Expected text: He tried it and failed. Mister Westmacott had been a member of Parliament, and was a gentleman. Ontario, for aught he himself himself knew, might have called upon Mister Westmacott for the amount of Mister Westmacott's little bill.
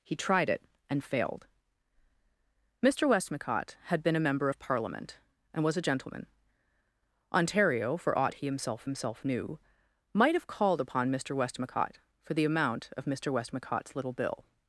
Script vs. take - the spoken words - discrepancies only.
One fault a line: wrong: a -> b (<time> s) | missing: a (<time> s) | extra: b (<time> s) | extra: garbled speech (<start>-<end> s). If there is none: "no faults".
no faults